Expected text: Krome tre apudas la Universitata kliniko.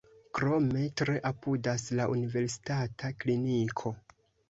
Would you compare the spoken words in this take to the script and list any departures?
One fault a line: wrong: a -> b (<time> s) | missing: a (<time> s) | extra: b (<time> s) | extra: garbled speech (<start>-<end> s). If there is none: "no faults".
no faults